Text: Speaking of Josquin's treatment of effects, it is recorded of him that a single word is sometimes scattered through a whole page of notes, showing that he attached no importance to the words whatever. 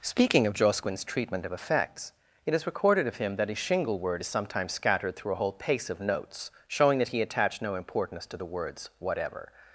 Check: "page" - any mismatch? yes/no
yes